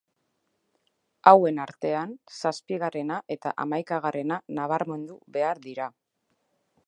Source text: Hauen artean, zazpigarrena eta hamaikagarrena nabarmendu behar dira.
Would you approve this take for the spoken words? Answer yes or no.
yes